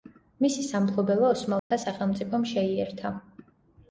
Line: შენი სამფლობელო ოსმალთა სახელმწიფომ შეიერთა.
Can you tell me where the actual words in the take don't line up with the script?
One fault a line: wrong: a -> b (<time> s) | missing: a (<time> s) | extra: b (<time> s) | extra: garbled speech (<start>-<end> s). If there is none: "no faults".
wrong: შენი -> მისი (0.4 s)